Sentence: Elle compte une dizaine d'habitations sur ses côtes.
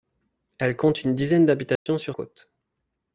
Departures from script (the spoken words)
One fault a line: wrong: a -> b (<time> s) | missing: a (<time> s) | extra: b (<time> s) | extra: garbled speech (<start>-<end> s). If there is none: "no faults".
missing: ses (2.1 s)